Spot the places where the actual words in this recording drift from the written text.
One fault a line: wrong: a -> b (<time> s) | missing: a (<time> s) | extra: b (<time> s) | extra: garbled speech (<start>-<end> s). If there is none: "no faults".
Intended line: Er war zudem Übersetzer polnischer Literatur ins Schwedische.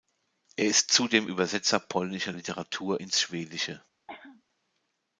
wrong: war -> ist (0.7 s)